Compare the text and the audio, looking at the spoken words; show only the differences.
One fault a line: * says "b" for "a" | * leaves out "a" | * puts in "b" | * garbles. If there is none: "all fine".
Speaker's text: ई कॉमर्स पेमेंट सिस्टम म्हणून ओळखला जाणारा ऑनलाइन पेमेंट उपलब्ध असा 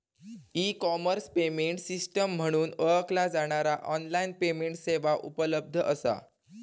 * puts in "सेवा"